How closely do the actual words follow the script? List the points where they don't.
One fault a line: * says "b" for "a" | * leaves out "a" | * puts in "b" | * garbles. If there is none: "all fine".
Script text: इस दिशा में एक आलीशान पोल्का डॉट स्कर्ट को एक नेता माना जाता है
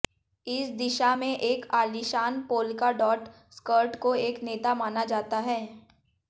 all fine